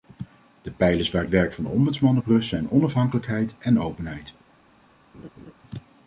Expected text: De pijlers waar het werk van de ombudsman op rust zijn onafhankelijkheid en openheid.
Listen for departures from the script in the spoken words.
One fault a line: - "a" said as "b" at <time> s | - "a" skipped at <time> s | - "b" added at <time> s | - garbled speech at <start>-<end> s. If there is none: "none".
none